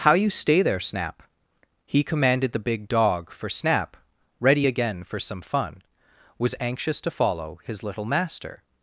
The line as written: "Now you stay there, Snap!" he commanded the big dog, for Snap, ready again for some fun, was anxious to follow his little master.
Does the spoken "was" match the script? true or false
true